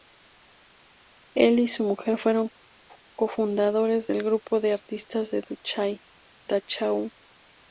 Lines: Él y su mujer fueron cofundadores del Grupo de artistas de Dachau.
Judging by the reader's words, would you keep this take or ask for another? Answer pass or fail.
pass